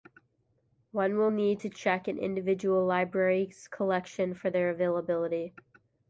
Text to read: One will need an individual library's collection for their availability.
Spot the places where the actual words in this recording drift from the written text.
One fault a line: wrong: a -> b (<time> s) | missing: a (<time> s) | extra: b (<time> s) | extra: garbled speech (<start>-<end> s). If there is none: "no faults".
extra: to check (1.6 s)